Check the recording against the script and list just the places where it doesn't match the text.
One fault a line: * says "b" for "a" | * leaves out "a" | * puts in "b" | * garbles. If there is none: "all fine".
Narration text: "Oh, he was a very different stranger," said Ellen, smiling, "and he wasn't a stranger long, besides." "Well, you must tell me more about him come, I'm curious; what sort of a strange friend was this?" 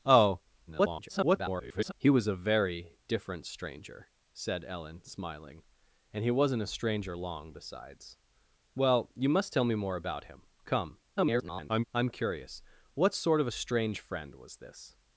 * garbles
* garbles